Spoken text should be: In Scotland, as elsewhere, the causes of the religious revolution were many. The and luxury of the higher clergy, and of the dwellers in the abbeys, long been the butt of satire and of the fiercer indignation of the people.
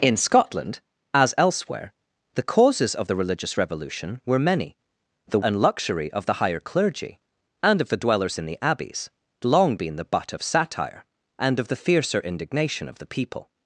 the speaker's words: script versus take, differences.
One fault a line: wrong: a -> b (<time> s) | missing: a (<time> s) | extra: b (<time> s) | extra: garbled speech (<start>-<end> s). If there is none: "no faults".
no faults